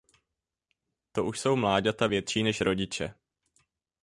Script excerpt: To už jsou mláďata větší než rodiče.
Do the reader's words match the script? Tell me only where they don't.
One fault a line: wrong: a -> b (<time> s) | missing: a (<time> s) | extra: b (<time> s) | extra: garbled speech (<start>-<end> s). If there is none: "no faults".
no faults